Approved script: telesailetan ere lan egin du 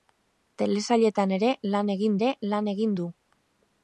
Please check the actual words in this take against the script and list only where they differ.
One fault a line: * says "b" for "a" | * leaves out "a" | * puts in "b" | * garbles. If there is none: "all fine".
* puts in "ere lan egin"